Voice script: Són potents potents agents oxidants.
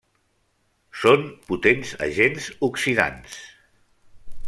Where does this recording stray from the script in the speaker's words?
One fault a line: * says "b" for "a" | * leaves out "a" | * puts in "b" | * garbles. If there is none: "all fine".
* leaves out "potents"